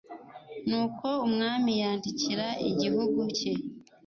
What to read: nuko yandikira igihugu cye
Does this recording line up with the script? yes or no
no